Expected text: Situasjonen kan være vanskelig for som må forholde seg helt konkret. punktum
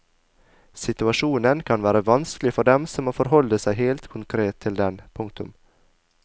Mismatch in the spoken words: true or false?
true